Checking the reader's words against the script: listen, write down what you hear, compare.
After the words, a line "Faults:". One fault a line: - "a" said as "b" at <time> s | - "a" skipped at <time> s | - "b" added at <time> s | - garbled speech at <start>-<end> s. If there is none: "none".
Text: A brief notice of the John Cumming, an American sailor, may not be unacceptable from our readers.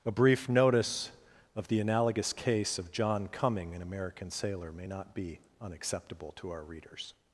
A brief notice of the analogous case of John Cumming, an American sailor, may not be unacceptable to our readers.
Faults:
- "analogous case of" added at 1.8 s
- "from" said as "to" at 6.4 s